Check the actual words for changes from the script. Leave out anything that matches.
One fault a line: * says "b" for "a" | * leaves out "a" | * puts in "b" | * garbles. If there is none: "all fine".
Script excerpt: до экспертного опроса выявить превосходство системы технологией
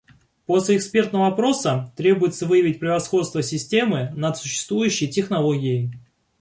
* says "после" for "до"
* puts in "требуется"
* puts in "над существующей"